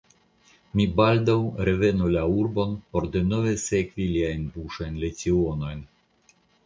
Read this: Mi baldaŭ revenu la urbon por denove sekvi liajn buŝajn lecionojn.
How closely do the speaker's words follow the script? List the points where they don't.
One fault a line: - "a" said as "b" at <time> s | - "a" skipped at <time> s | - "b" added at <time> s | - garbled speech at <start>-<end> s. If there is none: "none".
none